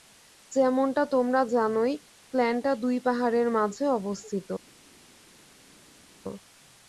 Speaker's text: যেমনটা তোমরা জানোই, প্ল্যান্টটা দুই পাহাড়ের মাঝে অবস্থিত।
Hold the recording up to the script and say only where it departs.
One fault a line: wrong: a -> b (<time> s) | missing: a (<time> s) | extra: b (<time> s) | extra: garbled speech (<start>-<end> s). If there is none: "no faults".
no faults